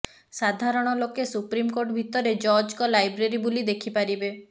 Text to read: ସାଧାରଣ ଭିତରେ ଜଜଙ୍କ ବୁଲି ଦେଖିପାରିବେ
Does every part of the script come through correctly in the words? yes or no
no